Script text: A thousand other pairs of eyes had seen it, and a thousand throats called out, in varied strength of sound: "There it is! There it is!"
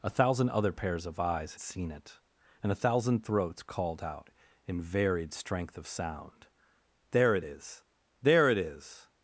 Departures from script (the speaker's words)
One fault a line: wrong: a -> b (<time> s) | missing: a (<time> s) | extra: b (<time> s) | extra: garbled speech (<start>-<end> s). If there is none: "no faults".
missing: had (1.6 s)